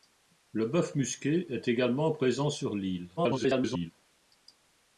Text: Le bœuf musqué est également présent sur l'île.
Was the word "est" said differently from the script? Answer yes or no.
no